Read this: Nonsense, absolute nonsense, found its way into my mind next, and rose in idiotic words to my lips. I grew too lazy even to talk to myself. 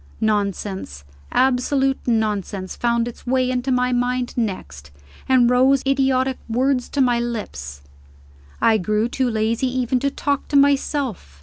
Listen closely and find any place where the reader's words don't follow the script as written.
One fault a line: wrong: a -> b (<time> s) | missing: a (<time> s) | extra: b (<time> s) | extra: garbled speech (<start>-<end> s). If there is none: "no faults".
missing: in (5.8 s)